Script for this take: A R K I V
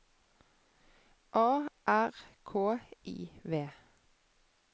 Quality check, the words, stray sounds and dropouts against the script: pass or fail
pass